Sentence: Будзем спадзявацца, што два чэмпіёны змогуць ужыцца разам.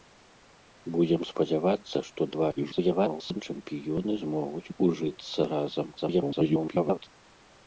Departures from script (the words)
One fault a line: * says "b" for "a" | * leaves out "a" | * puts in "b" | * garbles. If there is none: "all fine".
* garbles
* garbles